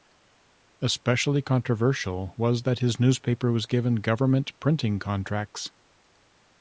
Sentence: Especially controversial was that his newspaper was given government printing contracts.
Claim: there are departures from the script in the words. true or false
false